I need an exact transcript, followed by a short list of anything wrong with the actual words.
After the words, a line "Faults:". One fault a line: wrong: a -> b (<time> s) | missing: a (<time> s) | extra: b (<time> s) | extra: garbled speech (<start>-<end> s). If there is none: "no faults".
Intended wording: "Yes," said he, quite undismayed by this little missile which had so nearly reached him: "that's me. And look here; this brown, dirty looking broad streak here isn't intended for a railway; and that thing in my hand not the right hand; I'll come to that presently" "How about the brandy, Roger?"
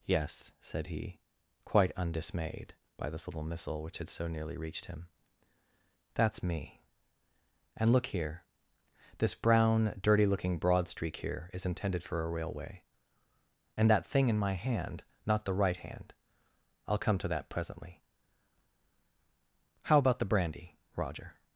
"Yes," said he, quite undismayed by this little missile which had so nearly reached him: "that's me. And look here; this brown, dirty looking broad streak here is intended for a railway; and that thing in my hand not the right hand; I'll come to that presently" "How about the brandy, Roger?"
Faults:
wrong: isn't -> is (11.5 s)